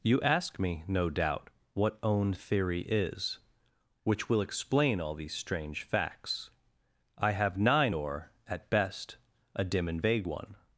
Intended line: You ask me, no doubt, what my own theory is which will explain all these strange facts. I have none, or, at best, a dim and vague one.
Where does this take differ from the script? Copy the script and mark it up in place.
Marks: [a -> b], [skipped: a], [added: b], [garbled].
You ask me, no doubt, what [skipped: my] own theory is which will explain all these strange facts. I have [none, -> nine] or, at best, a dim and vague one.